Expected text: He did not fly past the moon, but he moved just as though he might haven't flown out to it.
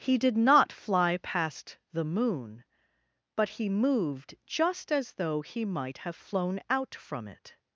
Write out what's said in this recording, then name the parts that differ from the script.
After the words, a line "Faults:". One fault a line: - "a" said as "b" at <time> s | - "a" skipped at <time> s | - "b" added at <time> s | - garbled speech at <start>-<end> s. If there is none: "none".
He did not fly past the moon, but he moved just as though he might have flown out from it.
Faults:
- "haven't" said as "have" at 6.0 s
- "to" said as "from" at 7.0 s